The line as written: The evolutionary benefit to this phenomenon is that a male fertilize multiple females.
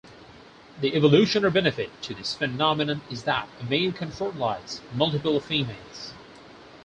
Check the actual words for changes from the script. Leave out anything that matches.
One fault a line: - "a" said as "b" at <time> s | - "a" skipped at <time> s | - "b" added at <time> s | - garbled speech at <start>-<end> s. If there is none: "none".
- "can" added at 3.9 s